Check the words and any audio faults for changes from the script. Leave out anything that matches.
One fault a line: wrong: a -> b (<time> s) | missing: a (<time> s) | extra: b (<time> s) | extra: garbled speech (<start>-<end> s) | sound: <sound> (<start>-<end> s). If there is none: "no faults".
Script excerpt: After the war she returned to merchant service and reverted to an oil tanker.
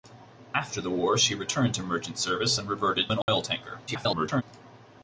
missing: to (3.1 s)
sound: dropout (3.2-3.3 s)
extra: garbled speech (3.9-4.4 s)